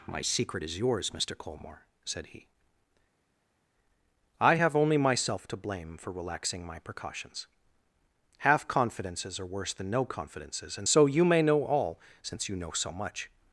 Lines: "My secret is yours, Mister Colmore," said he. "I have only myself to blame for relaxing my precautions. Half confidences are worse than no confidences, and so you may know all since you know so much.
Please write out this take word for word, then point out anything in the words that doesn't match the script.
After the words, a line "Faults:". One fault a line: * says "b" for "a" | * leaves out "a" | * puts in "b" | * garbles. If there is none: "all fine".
"My secret is yours, Mister Colmore," said he. "I have only myself to blame for relaxing my precautions. Half confidences are worse than no confidences, and so you may know all since you know so much.
Faults:
all fine